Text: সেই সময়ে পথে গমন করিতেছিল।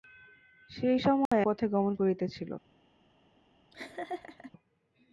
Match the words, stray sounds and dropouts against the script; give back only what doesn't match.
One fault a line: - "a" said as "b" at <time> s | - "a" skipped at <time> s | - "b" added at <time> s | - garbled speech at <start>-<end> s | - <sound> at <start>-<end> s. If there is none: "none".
- dropout at 1.3-1.3 s
- laugh at 3.7-4.5 s